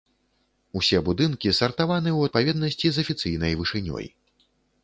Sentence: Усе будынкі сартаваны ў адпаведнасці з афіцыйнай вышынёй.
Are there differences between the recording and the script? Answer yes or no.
no